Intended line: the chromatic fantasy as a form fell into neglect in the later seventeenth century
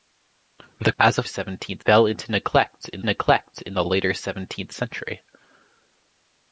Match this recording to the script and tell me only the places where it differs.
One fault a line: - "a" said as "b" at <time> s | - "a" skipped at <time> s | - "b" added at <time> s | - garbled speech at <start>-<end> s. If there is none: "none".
- "chromatic fantasy" skipped at 0.9 s
- "form" said as "seventeenth" at 1.2 s
- "neglect in" added at 3.0 s